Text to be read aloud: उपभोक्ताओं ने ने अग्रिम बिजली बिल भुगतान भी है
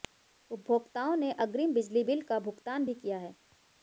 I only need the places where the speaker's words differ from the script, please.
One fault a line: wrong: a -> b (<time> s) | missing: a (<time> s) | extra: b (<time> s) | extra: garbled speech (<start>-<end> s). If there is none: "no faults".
missing: ने (1.3 s)
extra: का (2.3 s)
extra: किया (2.9 s)